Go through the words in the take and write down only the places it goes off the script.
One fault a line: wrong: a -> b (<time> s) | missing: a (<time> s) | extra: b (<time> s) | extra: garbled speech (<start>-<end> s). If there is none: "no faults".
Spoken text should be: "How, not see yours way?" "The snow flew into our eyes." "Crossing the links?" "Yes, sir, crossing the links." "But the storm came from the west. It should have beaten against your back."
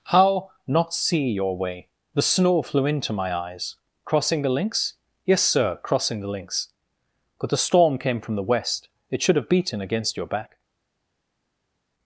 wrong: yours -> your (1.3 s)
wrong: our -> my (3.1 s)